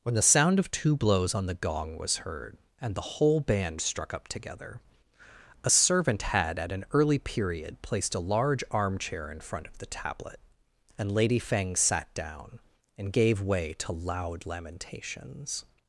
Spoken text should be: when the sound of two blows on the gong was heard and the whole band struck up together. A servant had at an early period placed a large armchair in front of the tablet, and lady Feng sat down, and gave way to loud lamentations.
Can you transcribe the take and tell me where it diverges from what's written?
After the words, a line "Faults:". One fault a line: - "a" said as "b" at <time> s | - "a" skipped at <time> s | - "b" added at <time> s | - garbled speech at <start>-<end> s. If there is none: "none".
when the sound of two blows on the gong was heard and the whole band struck up together. A servant had at an early period placed a large armchair in front of the tablet, and lady Feng sat down, and gave way to loud lamentations.
Faults:
none